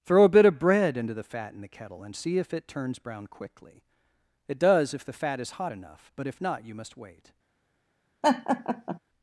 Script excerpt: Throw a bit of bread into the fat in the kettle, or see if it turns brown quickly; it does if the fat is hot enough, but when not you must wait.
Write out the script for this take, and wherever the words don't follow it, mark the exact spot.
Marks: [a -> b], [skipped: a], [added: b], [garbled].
Throw a bit of bread into the fat in the kettle, [or -> and] see if it turns brown quickly; it does if the fat is hot enough, but [when -> if] not you must wait.